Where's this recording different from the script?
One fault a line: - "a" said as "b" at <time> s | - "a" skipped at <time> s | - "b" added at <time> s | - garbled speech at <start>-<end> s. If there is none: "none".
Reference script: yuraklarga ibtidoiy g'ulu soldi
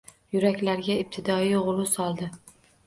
none